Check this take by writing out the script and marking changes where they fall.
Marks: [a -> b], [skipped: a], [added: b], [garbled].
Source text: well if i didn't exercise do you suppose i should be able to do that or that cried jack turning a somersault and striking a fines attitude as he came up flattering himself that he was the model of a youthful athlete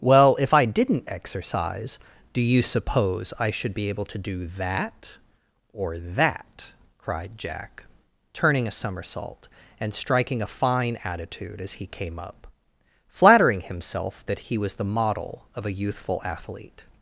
well if i didn't exercise do you suppose i should be able to do that or that cried jack turning a somersault and striking a [fines -> fine] attitude as he came up flattering himself that he was the model of a youthful athlete